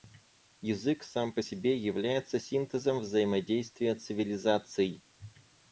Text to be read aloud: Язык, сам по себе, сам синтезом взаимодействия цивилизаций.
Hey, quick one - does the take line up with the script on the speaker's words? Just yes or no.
no